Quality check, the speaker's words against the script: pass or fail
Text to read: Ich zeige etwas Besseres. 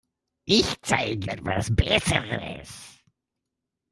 pass